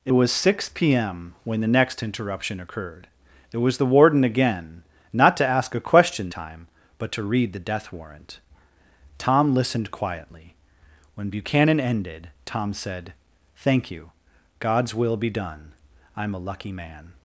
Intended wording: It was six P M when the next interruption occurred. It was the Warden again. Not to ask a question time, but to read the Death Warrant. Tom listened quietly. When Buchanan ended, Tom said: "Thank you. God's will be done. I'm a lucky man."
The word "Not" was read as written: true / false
true